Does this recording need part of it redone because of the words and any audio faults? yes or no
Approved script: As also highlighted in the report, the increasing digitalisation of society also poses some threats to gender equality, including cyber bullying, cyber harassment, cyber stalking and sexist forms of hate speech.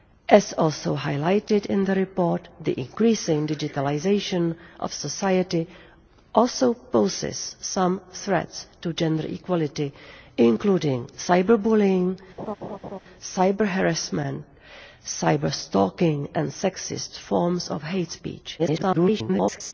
yes